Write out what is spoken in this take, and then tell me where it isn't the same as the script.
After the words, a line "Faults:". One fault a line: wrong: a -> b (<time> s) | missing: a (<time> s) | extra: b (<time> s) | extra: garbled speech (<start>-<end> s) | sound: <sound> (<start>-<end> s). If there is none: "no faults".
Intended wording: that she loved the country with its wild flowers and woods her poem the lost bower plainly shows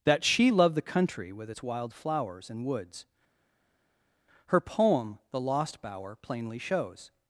that she loved the country with its wild flowers and woods her poem the lost bower plainly shows
Faults:
no faults